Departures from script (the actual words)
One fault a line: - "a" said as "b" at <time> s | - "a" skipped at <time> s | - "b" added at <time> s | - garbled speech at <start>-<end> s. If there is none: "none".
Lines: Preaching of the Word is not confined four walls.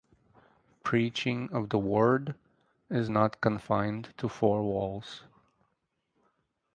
- "to" added at 4.2 s